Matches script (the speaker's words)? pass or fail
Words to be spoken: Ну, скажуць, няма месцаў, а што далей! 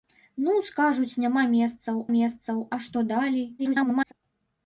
fail